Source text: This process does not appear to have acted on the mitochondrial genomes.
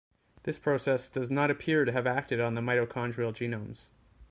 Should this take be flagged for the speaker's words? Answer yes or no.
no